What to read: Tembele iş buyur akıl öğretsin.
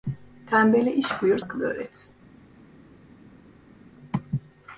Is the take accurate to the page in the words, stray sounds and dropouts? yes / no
yes